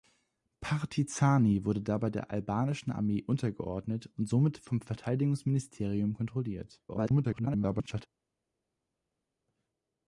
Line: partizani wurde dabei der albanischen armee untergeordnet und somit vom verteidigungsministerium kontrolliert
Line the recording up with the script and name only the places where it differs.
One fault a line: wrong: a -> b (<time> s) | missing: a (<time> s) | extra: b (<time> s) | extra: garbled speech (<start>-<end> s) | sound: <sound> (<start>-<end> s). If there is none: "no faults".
extra: garbled speech (6.9-8.1 s)